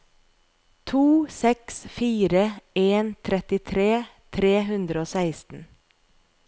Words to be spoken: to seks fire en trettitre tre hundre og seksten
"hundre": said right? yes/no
yes